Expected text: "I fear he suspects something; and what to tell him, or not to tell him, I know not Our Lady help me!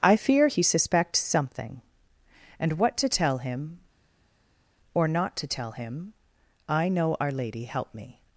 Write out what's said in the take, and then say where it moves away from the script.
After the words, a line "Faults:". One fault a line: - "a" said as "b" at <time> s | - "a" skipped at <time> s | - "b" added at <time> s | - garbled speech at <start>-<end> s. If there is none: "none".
"I fear he suspects something; and what to tell him, or not to tell him, I know Our Lady help me!
Faults:
- "not" skipped at 7.2 s